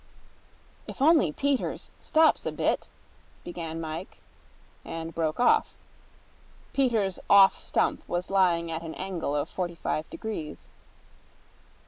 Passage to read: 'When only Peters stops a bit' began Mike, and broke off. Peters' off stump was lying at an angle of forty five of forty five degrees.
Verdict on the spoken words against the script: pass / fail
fail